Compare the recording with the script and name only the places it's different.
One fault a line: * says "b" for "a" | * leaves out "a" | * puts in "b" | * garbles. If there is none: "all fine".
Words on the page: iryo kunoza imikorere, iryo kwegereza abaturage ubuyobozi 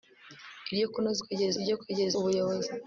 * says "kwegereza" for "imikorere"
* leaves out "abaturage"